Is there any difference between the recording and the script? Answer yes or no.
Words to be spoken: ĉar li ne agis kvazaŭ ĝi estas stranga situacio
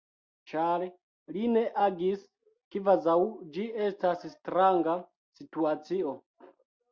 no